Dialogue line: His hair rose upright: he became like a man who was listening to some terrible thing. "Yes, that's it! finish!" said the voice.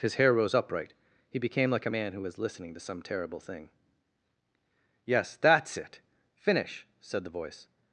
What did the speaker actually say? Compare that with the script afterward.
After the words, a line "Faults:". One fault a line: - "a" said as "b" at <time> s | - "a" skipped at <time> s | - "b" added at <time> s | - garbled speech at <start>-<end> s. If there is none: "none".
His hair rose upright: he became like a man who was listening to some terrible thing. "Yes, that's it! finish!" said the voice.
Faults:
none